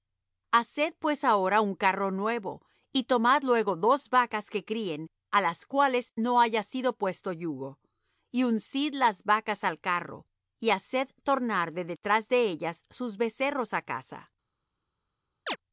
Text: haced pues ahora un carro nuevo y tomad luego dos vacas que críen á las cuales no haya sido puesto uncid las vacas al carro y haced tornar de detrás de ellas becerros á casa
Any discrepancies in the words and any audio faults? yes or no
yes